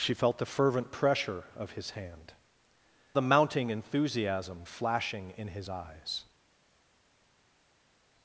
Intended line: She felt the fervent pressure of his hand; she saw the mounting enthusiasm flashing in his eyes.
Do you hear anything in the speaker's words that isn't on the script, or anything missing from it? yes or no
yes